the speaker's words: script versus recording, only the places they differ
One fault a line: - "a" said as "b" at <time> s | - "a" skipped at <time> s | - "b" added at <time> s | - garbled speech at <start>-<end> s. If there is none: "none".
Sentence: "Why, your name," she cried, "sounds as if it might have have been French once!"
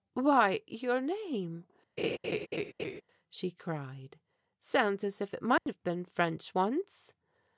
- "have" skipped at 5.8 s